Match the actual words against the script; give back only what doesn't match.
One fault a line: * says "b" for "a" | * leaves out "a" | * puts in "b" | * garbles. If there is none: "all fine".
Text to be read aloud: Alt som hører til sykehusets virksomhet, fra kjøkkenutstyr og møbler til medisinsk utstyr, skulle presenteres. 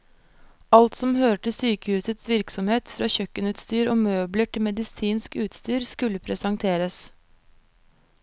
all fine